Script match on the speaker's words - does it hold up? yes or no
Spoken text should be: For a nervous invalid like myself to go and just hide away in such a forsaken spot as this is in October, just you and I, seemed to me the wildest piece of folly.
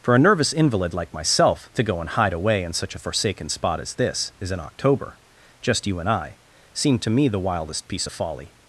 no